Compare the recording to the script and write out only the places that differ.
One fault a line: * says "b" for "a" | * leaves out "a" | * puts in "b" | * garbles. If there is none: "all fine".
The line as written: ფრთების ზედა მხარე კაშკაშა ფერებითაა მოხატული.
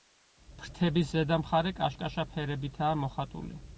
all fine